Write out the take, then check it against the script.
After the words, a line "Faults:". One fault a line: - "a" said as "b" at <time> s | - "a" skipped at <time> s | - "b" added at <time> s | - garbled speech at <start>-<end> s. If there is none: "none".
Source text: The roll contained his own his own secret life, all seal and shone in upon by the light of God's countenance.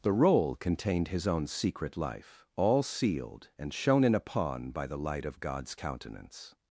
The roll contained his own secret life, all sealed and shone in upon by the light of God's countenance.
Faults:
- "his own" skipped at 1.4 s
- "seal" said as "sealed" at 2.8 s